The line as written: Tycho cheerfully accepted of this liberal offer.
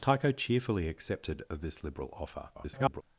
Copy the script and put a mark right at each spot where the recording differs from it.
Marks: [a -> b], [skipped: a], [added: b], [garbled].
Tycho cheerfully accepted of this liberal offer. [garbled]